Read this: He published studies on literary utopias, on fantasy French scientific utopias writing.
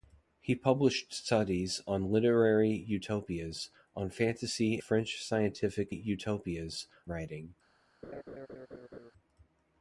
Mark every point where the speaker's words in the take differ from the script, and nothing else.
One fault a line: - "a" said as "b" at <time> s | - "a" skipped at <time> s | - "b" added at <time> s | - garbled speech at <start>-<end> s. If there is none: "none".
none